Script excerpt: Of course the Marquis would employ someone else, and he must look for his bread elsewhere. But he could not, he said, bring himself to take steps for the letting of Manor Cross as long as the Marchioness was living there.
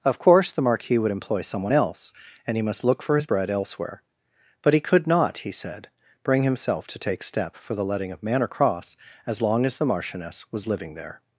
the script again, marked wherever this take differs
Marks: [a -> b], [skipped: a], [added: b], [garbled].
Of course the Marquis would employ someone else, and he must look for his bread elsewhere. But he could not, he said, bring himself to take [steps -> step] for the letting of Manor Cross as long as the Marchioness was living there.